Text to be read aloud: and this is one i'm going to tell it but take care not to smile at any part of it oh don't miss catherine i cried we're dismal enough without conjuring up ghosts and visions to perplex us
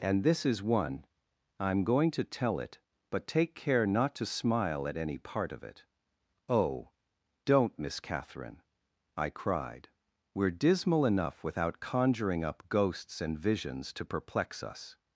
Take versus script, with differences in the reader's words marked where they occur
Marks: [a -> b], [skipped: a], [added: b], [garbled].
and this is one i'm going to tell it but take care not to smile at any part of it oh don't miss catherine i cried we're dismal enough without conjuring up ghosts and visions to perplex us